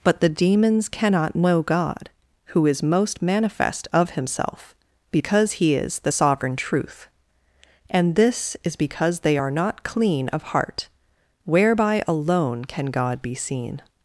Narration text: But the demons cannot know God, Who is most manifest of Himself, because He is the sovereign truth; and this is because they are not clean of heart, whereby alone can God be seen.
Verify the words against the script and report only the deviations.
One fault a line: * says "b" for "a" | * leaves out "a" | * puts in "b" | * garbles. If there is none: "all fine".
all fine